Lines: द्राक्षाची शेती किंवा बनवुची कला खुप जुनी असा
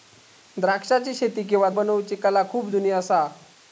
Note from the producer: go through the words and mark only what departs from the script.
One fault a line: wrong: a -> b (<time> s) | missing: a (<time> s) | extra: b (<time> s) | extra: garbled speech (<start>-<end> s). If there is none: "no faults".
no faults